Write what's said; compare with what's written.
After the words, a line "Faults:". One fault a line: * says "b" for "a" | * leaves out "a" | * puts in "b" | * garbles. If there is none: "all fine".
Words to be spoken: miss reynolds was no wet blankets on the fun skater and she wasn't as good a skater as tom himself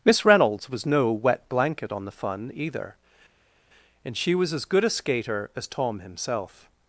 miss reynolds was no wet blanket on the fun either and she was as good a skater as tom himself
Faults:
* says "blanket" for "blankets"
* says "either" for "skater"
* says "was" for "wasn't"